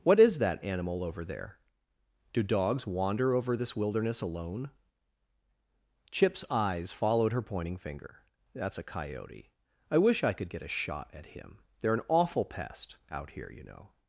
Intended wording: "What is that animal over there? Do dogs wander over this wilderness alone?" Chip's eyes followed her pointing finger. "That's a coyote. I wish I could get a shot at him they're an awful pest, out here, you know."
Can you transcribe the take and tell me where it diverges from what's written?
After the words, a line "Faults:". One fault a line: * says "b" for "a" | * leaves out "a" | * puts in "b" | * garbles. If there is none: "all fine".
"What is that animal over there? Do dogs wander over this wilderness alone?" Chip's eyes followed her pointing finger. "That's a coyote. I wish I could get a shot at him they're an awful pest, out here, you know."
Faults:
all fine